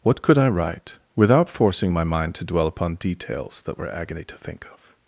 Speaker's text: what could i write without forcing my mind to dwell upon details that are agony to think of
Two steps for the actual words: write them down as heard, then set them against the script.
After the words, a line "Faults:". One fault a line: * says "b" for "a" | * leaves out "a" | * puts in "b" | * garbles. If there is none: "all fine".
what could i write without forcing my mind to dwell upon details that were agony to think of
Faults:
* says "were" for "are"